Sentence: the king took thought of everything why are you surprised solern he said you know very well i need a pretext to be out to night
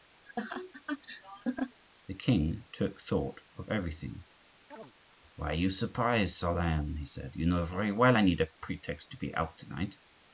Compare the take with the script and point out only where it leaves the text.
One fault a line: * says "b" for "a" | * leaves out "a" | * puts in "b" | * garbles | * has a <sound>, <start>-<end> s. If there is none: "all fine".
* has a laugh, 0.2-1.8 s
* has a chirp, 4.7-4.9 s